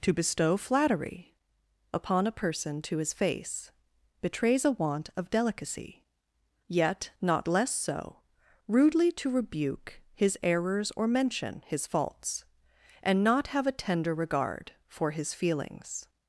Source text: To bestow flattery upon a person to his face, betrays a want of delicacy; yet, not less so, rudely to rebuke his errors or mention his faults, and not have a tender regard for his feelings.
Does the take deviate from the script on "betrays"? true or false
false